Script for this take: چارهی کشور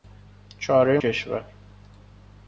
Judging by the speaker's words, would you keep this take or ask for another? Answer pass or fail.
pass